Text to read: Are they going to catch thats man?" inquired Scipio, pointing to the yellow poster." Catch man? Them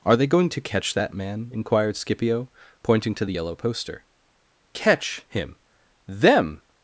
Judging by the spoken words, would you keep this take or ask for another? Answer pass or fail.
fail